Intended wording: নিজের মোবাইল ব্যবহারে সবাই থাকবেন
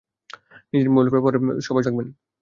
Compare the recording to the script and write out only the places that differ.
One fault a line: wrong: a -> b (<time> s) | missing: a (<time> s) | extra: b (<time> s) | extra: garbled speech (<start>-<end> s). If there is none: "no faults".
no faults